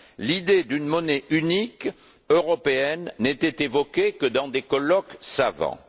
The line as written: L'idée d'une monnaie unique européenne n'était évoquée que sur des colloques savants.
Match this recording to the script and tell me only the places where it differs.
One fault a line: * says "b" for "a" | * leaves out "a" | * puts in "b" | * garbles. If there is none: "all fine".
* says "dans" for "sur"